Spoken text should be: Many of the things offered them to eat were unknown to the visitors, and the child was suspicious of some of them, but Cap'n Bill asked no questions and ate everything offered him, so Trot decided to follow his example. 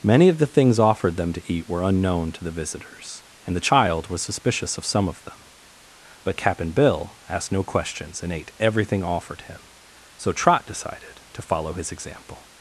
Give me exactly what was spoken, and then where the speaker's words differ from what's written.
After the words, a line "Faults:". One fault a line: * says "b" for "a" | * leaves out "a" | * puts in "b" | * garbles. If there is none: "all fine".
Many of the things offered them to eat were unknown to the visitors, and the child was suspicious of some of them, but Cap'n Bill asked no questions and ate everything offered him, so Trot decided to follow his example.
Faults:
all fine